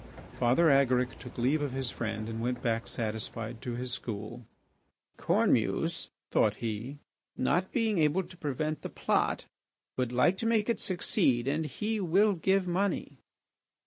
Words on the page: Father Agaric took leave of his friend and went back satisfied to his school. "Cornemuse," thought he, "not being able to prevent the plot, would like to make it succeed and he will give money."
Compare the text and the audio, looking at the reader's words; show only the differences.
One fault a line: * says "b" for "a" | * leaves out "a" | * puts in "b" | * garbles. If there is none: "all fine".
all fine